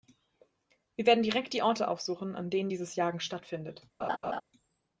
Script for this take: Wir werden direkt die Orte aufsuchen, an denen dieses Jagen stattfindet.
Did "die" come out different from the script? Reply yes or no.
no